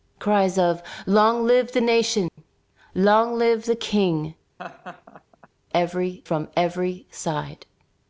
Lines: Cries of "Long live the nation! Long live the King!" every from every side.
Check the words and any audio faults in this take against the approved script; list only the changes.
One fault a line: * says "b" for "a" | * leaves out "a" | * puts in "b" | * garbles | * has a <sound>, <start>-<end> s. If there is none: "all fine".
* has a dropout, 2.3-2.4 s
* has a laugh, 4.6-5.5 s